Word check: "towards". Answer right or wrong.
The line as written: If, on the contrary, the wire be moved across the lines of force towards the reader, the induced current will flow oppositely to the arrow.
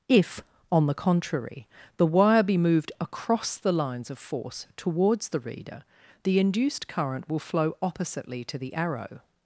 right